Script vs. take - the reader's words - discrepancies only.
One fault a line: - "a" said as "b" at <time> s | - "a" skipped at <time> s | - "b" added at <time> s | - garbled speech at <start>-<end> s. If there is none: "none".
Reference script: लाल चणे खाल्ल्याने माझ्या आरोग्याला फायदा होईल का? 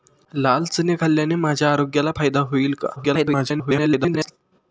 - garbled speech at 3.0-4.3 s